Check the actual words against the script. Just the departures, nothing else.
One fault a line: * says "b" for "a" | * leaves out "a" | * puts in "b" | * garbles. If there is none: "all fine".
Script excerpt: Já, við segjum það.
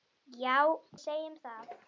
* leaves out "við"